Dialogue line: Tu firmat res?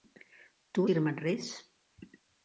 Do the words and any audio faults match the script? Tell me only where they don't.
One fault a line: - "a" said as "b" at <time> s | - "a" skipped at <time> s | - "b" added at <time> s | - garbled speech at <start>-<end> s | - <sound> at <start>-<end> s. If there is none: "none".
none